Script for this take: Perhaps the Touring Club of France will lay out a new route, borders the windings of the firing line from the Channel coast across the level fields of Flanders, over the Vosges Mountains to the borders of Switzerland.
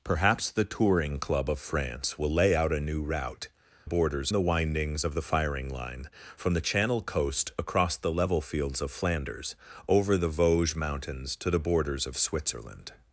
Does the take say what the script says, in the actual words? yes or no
yes